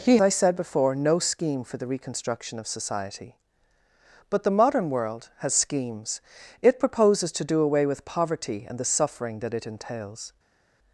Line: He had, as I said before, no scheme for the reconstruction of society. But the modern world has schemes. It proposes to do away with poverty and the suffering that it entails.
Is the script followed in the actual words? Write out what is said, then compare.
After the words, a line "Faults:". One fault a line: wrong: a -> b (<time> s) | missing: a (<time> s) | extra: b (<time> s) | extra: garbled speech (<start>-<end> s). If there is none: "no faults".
He I said before, no scheme for the reconstruction of society. But the modern world has schemes. It proposes to do away with poverty and the suffering that it entails.
Faults:
missing: had as (0.2 s)